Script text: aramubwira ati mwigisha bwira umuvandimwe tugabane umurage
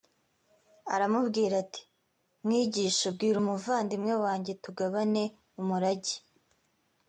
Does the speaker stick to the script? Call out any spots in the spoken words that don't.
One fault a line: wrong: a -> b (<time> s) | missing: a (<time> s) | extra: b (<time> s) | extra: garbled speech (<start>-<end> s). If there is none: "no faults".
extra: wanjye (4.2 s)